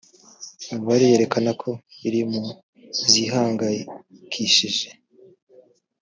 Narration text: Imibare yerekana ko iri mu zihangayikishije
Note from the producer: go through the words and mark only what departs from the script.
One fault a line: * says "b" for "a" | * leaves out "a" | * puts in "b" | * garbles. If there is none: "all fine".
all fine